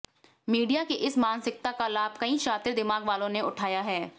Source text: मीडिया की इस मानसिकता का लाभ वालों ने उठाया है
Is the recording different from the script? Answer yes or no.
yes